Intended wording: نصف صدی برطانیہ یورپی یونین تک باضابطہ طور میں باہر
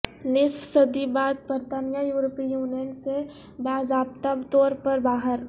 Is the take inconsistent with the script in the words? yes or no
yes